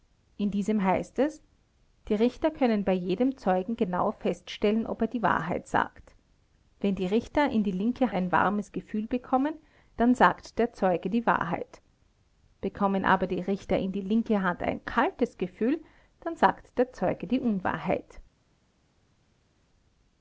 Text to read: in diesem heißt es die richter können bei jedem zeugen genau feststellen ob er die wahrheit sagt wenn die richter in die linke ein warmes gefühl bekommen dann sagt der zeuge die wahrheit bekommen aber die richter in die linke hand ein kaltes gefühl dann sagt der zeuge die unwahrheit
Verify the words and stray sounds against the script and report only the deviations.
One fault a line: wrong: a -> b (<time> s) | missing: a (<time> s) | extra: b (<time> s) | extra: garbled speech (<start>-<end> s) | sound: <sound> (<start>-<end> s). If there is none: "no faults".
no faults